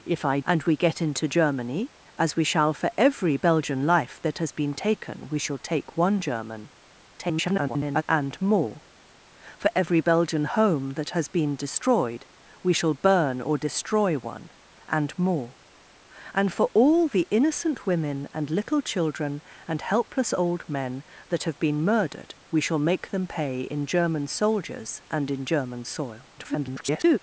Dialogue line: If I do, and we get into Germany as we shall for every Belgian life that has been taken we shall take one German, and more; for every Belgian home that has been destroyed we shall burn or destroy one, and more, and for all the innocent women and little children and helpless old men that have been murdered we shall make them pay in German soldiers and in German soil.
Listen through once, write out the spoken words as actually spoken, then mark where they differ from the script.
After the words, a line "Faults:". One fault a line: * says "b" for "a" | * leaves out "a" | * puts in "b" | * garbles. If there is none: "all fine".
If I and we get into Germany as we shall for every Belgian life that has been taken we shall take one German, [garbled] and more; for every Belgian home that has been destroyed we shall burn or destroy one, and more, and for all the innocent women and little children and helpless old men that have been murdered we shall make them pay in German soldiers and in German soil. [garbled]
Faults:
* leaves out "do"
* garbles
* garbles